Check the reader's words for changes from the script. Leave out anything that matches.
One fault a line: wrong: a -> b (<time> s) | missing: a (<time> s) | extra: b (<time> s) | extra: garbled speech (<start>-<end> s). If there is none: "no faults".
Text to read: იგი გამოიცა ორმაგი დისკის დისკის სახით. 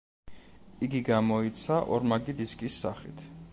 missing: დისკის (2.8 s)